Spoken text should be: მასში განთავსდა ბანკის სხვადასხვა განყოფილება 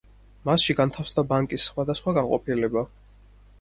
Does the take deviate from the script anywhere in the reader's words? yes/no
no